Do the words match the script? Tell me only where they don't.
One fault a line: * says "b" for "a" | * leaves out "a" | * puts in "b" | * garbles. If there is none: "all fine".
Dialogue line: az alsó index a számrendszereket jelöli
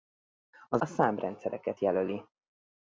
* leaves out "alsó index"